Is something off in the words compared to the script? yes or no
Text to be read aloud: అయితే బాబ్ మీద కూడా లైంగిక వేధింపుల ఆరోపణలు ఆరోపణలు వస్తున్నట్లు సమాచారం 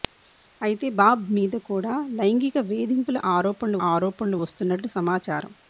no